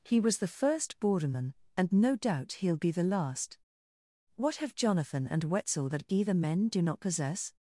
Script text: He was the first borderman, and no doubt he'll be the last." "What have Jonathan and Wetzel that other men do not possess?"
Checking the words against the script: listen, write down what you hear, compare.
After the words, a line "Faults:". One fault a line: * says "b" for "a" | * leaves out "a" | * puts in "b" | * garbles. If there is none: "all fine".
He was the first borderman, and no doubt he'll be the last." "What have Jonathan and Wetzel that either men do not possess?"
Faults:
* says "either" for "other"